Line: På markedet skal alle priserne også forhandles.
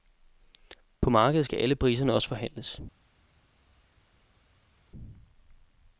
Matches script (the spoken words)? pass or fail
pass